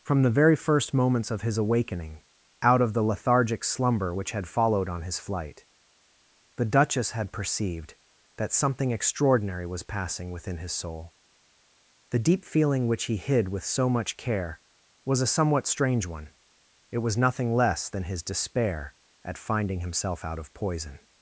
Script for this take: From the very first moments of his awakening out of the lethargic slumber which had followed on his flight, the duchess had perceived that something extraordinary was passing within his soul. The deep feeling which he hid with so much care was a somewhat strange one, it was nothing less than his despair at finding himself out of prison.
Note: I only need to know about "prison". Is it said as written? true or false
false